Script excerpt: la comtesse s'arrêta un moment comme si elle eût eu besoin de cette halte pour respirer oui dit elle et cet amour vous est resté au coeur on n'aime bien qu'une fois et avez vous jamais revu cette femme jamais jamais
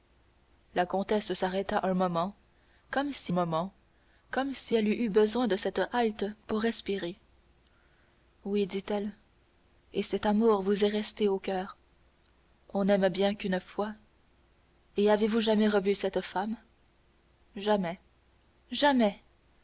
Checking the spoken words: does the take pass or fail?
fail